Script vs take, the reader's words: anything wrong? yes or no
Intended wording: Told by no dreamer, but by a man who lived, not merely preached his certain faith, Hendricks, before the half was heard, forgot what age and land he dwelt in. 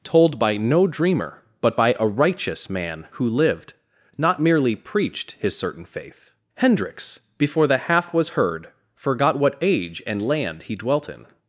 yes